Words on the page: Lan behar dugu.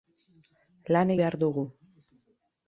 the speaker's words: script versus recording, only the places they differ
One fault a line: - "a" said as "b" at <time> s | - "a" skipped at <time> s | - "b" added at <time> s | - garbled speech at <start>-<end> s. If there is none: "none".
none